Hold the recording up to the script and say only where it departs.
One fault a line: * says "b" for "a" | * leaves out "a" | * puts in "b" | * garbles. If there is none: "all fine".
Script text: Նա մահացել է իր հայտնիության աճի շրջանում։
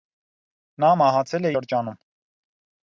* leaves out "իր հայտնիության աճի"